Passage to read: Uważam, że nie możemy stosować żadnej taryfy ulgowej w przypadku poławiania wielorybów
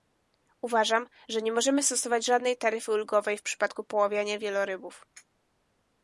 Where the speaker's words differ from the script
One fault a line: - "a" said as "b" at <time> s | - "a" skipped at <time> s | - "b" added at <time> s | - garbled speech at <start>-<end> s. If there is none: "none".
none